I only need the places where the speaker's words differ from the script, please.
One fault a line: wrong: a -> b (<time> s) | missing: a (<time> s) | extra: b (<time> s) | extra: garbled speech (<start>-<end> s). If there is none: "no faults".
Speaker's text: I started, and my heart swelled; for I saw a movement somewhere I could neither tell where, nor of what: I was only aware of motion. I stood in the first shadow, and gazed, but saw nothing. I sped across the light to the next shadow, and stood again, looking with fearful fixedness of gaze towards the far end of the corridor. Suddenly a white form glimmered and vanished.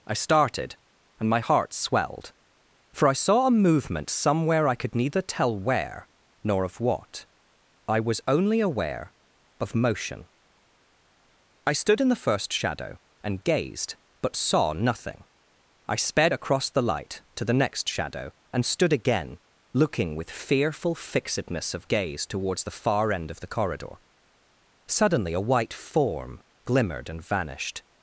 no faults